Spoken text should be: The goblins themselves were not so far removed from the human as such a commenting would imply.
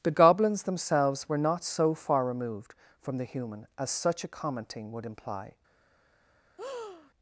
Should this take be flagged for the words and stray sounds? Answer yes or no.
yes